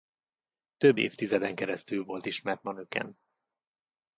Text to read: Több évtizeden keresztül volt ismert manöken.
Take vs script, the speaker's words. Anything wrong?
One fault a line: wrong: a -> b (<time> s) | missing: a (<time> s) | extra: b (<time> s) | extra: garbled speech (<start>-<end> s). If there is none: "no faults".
no faults